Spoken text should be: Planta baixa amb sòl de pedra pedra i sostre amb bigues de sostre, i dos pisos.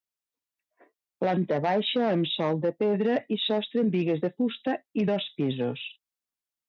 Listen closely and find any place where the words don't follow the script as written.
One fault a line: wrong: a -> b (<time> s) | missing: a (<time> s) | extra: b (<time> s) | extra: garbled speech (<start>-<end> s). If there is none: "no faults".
missing: pedra (3.2 s)
wrong: sostre -> fusta (4.4 s)